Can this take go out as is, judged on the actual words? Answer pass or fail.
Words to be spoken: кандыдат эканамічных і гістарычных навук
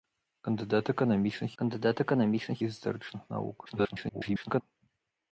fail